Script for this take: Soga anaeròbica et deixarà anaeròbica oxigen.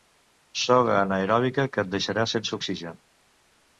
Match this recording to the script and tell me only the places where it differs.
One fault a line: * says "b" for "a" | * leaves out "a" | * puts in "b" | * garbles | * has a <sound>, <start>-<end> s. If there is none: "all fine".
* puts in "que"
* says "sense" for "anaeròbica"